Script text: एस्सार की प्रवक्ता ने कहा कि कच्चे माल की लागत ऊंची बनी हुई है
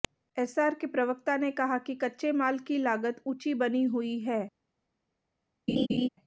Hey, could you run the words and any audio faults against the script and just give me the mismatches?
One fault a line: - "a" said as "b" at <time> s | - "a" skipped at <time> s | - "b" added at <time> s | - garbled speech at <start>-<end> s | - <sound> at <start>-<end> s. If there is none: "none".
- "की" said as "के" at 0.7 s
- laugh at 5.7-6.1 s